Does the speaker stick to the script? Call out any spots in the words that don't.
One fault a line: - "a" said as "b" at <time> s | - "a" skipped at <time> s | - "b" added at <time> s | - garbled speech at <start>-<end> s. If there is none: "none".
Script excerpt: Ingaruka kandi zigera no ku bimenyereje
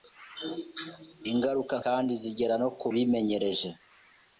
none